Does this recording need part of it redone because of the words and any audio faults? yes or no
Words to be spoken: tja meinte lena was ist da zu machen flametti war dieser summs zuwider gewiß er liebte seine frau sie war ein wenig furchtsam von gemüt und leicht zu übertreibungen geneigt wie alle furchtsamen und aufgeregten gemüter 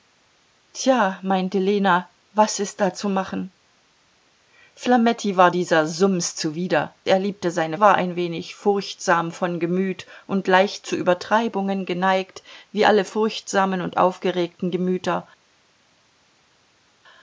yes